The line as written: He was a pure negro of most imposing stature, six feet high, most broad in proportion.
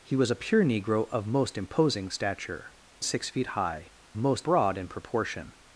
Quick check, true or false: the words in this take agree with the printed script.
true